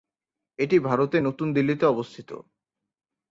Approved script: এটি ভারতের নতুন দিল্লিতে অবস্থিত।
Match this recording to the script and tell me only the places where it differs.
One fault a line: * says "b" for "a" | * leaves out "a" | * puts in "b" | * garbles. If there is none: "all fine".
all fine